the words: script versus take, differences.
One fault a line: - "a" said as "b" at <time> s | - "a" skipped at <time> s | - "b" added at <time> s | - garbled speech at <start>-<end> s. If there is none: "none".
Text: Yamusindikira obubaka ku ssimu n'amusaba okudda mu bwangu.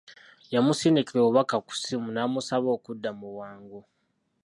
none